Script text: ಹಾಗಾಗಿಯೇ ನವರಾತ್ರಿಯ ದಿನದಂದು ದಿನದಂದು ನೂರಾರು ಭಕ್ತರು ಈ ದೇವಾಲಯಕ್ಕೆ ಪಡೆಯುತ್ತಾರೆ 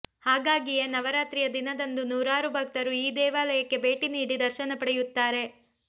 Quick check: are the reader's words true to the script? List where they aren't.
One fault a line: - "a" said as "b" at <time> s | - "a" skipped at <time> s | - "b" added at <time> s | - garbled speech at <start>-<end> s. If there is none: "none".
- "ದಿನದಂದು" skipped at 2.0 s
- "ಭೇಟಿ ನೀಡಿ ದರ್ಶನ" added at 3.9 s